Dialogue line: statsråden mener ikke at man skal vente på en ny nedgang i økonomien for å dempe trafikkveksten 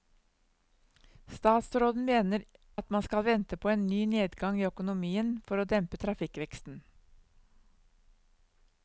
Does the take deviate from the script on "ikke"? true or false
true